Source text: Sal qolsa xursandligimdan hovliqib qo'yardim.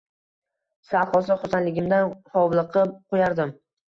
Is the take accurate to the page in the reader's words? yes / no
yes